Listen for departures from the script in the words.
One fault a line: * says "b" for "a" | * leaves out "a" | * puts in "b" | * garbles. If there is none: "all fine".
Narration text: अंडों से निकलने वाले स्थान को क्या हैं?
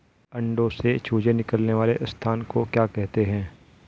* puts in "चूजे"
* puts in "कहते"